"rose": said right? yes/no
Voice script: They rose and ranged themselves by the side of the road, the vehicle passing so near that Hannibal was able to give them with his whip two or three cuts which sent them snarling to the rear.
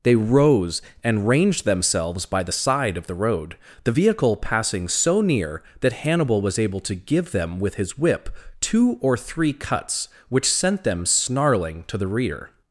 yes